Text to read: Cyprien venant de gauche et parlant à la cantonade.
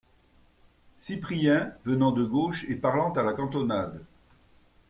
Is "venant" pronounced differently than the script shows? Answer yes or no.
no